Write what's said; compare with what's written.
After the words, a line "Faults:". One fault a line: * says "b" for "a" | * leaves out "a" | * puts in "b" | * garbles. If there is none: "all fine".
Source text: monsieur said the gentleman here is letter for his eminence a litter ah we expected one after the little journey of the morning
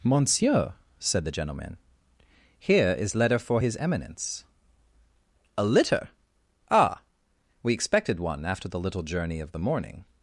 monsieur said the gentleman here is letter for his eminence a litter ah we expected one after the little journey of the morning
Faults:
all fine